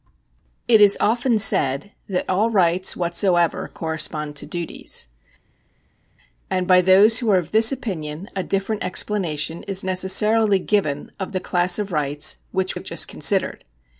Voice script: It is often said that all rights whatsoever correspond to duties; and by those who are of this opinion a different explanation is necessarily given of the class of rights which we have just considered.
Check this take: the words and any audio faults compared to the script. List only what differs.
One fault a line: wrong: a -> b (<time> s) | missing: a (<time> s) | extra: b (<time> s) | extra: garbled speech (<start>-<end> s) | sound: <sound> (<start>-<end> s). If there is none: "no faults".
missing: we (12.8 s)